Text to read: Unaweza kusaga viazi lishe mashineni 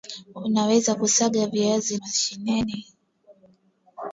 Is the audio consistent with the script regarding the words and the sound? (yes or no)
no